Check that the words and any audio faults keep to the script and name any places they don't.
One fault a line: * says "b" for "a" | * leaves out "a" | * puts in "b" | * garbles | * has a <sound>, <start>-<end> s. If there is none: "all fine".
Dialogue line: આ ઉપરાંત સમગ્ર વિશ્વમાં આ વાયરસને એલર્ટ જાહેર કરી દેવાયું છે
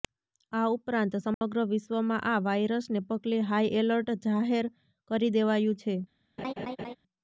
* has a dropout, 1.3-1.4 s
* puts in "પગલે હાઈ"
* has a laugh, 6.4-7.0 s